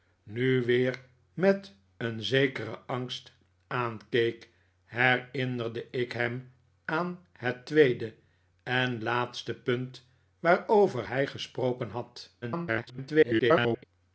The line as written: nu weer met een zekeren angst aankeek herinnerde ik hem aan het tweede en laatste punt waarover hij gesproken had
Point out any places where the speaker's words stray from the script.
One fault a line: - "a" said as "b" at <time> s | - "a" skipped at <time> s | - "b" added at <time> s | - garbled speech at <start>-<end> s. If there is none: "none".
- garbled speech at 12.4-13.8 s